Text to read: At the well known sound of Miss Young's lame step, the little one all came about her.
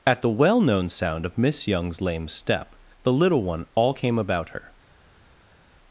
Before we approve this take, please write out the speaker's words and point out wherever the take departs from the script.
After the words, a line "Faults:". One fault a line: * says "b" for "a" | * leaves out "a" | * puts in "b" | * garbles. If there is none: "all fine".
At the well known sound of Miss Young's lame step, the little one all came about her.
Faults:
all fine